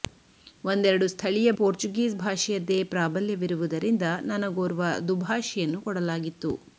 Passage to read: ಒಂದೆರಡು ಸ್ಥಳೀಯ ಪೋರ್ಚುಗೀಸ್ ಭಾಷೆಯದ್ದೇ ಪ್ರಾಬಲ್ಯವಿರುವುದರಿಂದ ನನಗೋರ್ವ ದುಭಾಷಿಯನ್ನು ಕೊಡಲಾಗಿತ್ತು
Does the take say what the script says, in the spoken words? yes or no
yes